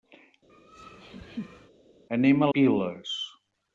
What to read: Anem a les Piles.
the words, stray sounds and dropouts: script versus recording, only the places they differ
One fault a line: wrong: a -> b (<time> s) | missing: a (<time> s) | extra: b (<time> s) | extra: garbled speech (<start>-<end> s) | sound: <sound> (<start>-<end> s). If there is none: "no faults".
sound: laugh (0.5-1.7 s)
missing: les (2.5 s)